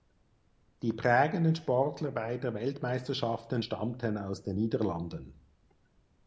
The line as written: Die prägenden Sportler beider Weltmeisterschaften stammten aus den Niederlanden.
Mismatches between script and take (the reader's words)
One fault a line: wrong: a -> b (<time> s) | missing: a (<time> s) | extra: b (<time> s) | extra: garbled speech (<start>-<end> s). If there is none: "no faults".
no faults